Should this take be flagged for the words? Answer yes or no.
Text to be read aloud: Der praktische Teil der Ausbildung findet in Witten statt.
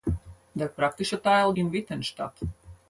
yes